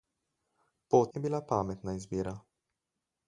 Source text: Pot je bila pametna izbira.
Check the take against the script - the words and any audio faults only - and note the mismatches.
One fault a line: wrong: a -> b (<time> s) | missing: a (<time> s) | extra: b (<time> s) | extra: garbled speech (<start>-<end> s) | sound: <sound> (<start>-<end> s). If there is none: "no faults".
no faults